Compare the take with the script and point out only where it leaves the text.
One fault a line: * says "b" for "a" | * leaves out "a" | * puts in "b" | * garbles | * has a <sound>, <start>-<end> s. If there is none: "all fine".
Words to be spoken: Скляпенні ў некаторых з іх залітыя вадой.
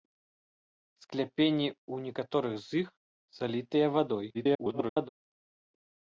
* garbles